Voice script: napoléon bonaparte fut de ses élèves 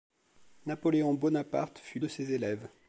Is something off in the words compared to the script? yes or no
no